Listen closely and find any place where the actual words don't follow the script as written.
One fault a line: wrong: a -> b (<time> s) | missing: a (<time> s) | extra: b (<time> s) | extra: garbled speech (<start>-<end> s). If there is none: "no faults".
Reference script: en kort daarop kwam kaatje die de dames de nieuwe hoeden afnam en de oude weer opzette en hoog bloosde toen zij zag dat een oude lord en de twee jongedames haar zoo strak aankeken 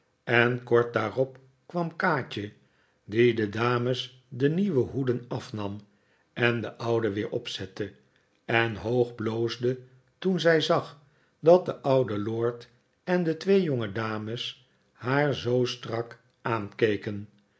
wrong: een -> de (11.6 s)